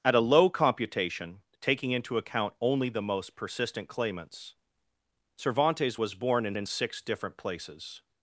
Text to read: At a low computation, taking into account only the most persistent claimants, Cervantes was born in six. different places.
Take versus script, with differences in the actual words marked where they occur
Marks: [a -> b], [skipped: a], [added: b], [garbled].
At a low computation, taking into account only the most persistent claimants, Cervantes was born in [added: in] six. different places.